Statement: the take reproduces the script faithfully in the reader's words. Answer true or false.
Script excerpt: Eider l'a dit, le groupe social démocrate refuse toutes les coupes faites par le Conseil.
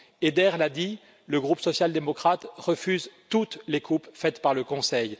true